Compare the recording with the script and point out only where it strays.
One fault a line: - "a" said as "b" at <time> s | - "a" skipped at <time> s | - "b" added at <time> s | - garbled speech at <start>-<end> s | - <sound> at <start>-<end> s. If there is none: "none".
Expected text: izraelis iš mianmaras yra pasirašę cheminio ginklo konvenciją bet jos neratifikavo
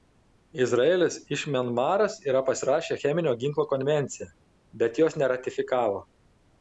none